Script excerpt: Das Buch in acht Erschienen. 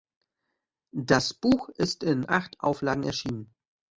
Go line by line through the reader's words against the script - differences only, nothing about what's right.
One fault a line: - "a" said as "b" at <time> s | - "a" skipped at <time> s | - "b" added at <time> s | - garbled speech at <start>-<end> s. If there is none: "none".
- "ist" added at 1.7 s
- "Auflagen" added at 2.6 s